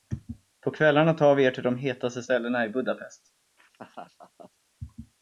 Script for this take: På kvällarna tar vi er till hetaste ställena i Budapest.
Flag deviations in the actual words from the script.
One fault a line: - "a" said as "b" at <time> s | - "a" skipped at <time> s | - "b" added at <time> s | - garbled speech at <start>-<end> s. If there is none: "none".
- "de" added at 1.6 s